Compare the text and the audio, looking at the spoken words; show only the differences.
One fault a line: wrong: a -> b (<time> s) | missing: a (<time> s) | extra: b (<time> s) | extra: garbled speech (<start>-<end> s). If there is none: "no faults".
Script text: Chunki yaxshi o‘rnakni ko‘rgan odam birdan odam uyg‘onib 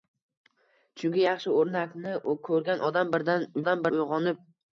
no faults